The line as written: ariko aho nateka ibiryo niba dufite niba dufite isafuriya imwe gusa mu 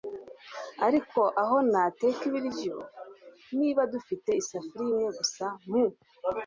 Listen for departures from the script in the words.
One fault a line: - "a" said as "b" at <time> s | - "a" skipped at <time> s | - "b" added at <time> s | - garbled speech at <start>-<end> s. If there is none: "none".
- "niba dufite" skipped at 4.3 s